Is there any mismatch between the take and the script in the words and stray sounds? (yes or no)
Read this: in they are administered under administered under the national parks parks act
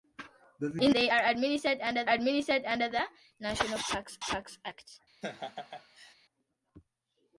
yes